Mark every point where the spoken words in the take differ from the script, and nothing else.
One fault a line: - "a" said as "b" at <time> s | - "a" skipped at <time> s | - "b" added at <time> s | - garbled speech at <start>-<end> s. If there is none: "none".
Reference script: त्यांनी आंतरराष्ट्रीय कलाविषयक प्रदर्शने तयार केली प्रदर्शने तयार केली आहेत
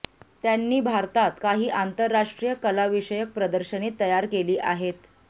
- "भारतात काही" added at 0.8 s
- "प्रदर्शने तयार केली" skipped at 4.6 s